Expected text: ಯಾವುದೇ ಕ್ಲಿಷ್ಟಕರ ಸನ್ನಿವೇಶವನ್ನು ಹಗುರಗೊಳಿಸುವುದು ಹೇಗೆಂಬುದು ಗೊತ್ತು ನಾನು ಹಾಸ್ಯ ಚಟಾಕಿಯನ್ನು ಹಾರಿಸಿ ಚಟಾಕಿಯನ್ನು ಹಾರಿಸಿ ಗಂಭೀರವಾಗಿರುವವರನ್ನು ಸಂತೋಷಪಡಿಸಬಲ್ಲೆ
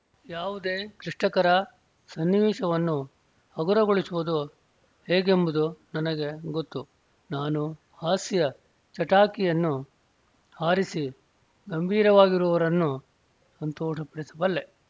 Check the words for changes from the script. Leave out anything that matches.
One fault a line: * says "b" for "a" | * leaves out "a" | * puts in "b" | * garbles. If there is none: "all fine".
* puts in "ನನಗೆ"
* leaves out "ಚಟಾಕಿಯನ್ನು ಹಾರಿಸಿ"